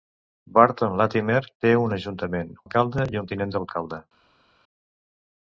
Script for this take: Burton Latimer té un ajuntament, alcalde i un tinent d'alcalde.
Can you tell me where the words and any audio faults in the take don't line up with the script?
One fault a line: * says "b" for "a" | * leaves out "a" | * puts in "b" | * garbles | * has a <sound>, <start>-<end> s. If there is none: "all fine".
all fine